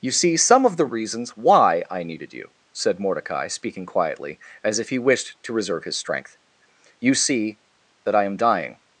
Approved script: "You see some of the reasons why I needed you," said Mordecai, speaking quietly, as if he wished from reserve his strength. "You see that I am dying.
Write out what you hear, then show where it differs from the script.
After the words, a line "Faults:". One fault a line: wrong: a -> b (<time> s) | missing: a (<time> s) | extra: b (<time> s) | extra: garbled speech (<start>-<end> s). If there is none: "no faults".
"You see some of the reasons why I needed you," said Mordecai, speaking quietly, as if he wished to reserve his strength. "You see that I am dying.
Faults:
wrong: from -> to (5.4 s)